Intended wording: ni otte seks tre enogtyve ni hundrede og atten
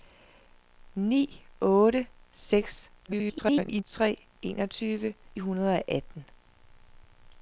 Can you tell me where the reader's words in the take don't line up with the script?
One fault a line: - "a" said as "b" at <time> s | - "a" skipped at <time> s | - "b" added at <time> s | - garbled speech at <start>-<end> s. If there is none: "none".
- garbled speech at 3.0-3.8 s
- "ni" skipped at 5.1 s